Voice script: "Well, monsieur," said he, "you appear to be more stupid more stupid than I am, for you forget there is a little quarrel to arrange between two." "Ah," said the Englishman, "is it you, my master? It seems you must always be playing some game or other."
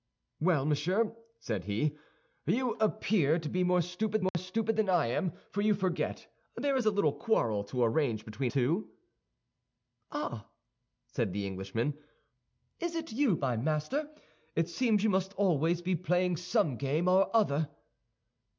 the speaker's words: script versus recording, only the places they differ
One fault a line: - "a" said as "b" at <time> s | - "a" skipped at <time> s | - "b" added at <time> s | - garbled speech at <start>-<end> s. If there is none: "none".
none